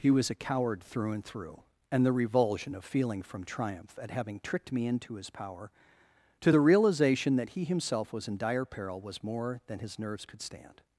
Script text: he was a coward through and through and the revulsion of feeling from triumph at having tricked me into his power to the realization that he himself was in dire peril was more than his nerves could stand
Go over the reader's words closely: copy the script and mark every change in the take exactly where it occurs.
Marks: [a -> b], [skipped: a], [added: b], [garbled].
he was a coward through and through and the revulsion of feeling from triumph at having tricked me into his power to the realization that he himself was in dire peril was more than his nerves could stand